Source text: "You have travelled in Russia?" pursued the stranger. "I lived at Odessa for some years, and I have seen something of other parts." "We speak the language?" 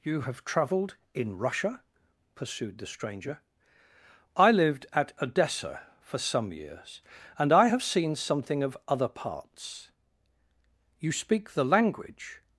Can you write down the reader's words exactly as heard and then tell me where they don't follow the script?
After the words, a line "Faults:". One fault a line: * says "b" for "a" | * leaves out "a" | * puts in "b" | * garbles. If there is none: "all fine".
"You have travelled in Russia?" pursued the stranger. "I lived at Odessa for some years, and I have seen something of other parts." "You speak the language?"
Faults:
* says "You" for "We"